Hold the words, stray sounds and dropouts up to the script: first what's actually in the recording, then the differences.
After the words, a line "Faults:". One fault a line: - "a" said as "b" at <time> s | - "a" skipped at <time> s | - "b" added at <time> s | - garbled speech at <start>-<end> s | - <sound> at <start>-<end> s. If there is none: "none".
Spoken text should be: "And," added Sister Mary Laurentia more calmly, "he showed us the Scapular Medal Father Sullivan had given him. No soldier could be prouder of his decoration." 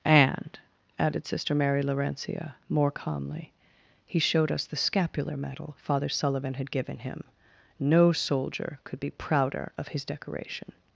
"And," added Sister Mary Laurentia more calmly, "he showed us the Scapular Medal Father Sullivan had given him. No soldier could be prouder of his decoration."
Faults:
none